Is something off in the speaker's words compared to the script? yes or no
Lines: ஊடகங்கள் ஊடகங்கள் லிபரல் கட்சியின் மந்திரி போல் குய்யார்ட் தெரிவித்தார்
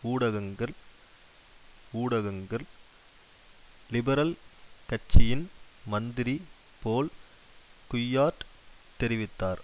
no